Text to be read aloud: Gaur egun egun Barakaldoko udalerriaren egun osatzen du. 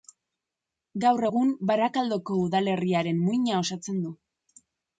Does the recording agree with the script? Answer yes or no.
no